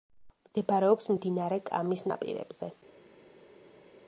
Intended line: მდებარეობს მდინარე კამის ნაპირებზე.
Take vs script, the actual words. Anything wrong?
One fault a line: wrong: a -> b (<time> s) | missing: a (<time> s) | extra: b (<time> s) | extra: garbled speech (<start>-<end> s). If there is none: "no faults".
no faults